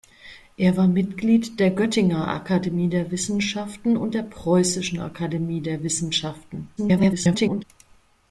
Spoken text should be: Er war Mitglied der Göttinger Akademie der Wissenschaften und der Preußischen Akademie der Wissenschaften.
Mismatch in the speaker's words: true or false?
true